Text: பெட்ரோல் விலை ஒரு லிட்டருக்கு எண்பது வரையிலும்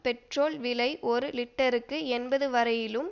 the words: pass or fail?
pass